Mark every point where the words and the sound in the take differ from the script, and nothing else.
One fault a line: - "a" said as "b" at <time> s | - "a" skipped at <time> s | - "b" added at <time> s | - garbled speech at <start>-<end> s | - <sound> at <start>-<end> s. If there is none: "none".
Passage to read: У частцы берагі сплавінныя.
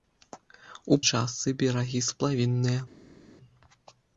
none